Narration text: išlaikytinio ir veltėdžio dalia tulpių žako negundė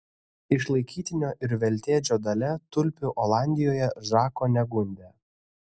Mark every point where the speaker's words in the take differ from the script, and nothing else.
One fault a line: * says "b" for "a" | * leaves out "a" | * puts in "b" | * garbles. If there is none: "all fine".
* puts in "olandijoje"